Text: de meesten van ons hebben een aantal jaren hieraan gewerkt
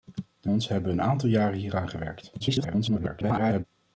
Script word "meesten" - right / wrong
wrong